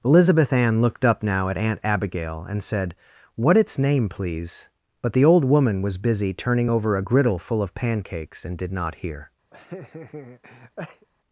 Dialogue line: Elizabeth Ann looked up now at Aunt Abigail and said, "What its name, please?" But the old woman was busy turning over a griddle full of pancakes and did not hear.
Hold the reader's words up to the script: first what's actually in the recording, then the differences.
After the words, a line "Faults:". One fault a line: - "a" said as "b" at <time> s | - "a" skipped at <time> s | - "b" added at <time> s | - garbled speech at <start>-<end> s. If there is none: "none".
Elizabeth Ann looked up now at Aunt Abigail and said, "What its name, please?" But the old woman was busy turning over a griddle full of pancakes and did not hear.
Faults:
none